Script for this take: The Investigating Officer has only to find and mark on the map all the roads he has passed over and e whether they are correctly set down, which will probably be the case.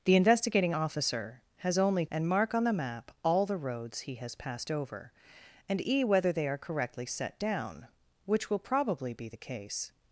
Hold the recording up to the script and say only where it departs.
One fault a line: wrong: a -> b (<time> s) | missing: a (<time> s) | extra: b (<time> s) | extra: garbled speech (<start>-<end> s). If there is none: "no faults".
missing: to find (2.0 s)